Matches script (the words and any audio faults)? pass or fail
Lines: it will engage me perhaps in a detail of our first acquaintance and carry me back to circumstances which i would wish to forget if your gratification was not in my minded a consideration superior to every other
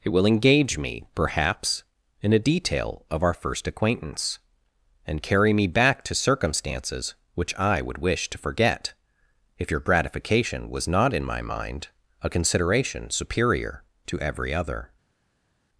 fail